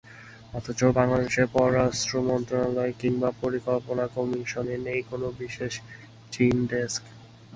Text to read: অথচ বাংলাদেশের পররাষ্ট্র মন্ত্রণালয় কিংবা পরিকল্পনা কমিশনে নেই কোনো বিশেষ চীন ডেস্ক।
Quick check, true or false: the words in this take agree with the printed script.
true